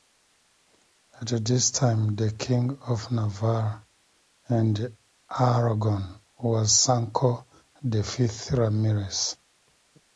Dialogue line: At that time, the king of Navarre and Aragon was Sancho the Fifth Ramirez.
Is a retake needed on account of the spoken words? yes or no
yes